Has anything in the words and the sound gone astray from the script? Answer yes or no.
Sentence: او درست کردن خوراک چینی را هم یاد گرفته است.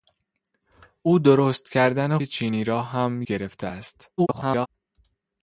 yes